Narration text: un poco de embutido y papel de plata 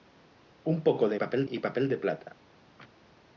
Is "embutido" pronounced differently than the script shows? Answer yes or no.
yes